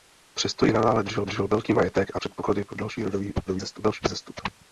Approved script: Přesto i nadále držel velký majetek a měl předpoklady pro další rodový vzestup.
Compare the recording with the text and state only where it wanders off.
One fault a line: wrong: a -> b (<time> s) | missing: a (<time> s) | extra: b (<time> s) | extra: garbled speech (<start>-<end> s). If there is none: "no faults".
extra: držel (1.2 s)
missing: měl (2.2 s)
extra: garbled speech (3.5-4.0 s)